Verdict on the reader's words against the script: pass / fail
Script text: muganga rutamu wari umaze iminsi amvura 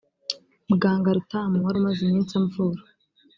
pass